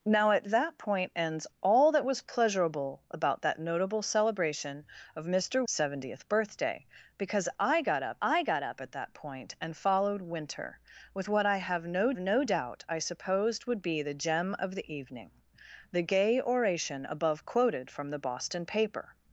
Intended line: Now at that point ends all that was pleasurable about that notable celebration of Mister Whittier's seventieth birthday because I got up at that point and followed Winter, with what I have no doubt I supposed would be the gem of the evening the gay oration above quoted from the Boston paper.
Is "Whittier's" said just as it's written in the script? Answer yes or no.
no